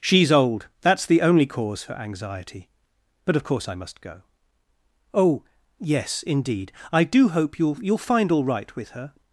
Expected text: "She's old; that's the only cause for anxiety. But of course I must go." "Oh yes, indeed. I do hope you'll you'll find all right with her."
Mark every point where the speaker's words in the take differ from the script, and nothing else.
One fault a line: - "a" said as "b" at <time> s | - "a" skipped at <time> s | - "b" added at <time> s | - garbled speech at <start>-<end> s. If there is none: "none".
none